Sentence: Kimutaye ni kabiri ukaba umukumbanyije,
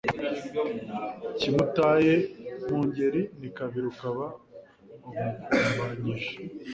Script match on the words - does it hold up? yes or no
no